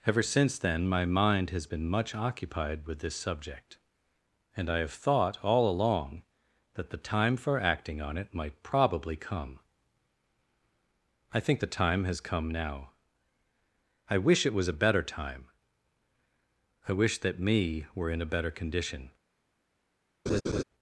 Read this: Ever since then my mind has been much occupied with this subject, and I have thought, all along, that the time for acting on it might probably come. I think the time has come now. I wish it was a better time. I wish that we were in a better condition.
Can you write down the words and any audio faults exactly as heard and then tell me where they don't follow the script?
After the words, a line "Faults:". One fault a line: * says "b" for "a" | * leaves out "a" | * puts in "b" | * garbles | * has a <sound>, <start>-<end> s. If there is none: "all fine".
Ever since then my mind has been much occupied with this subject, and I have thought, all along, that the time for acting on it might probably come. I think the time has come now. I wish it was a better time. I wish that me were in a better condition.
Faults:
* says "me" for "we"
* has a laugh, 20.3-20.6 s